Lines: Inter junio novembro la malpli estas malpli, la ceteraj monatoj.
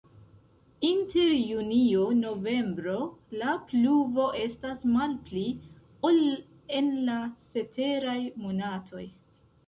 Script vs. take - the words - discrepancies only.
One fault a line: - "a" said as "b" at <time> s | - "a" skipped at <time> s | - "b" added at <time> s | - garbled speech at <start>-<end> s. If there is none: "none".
- "malpli" said as "pluvo" at 3.7 s
- "ol en" added at 6.1 s